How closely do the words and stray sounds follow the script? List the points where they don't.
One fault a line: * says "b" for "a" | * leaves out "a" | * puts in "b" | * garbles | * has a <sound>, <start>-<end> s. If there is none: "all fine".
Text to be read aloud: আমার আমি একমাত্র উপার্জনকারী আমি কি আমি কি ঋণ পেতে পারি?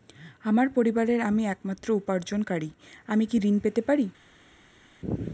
* puts in "পরিবারের"
* leaves out "আমি কি"